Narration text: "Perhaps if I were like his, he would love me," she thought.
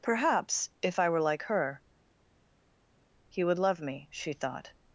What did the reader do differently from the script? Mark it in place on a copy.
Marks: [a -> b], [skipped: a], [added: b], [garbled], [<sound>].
"Perhaps if I were like [his, -> her] he would love me," she thought.